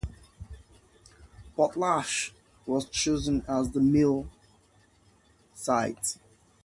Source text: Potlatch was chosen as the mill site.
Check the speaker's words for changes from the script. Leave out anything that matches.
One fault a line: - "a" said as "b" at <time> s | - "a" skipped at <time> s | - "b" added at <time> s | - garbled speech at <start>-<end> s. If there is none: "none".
none